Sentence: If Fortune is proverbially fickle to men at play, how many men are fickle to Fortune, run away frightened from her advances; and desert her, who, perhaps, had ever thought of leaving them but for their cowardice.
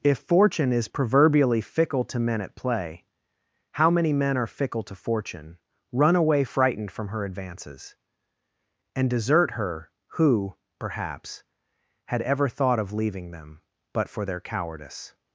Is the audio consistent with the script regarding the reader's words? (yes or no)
yes